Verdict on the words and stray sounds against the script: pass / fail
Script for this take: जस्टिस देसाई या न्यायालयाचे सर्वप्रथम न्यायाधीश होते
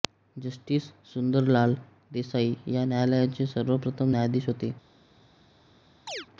fail